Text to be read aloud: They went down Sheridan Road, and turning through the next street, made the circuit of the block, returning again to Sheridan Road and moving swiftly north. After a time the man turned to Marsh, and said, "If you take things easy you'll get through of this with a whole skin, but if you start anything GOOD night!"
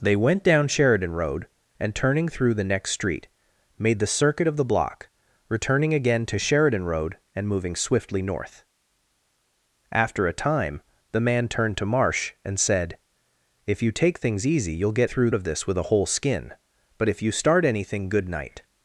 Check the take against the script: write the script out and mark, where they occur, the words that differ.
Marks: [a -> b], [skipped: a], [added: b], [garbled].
They went down Sheridan Road, and turning through the next street, made the circuit of the block, returning again to Sheridan Road and moving swiftly north. After a time the man turned to Marsh, and said, "If you take things easy you'll get through of this with a whole skin, but if you start anything GOOD night!"